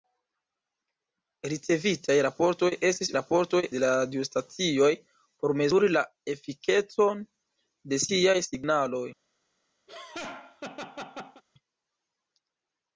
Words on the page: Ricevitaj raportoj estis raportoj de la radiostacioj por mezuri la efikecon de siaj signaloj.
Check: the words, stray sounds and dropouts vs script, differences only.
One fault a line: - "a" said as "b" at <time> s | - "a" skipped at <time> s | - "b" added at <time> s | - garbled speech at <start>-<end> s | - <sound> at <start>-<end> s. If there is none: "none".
- laugh at 9.9-11.4 s